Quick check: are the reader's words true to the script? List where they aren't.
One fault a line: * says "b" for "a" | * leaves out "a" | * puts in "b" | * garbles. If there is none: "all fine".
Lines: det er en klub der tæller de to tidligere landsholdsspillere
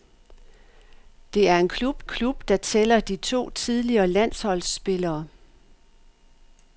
* puts in "klub"